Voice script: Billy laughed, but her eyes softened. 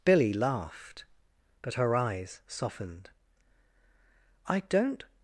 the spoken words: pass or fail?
fail